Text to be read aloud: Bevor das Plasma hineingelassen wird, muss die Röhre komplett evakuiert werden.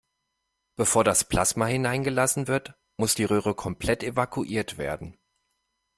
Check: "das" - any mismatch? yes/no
no